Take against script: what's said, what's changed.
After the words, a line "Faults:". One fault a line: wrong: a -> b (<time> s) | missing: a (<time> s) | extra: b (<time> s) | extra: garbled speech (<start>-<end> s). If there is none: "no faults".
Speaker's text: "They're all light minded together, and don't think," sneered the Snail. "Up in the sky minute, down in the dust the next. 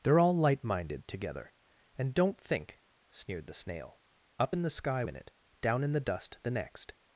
"They're all light minded together, and don't think," sneered the Snail. "Up in the sky minute, down in the dust the next.
Faults:
no faults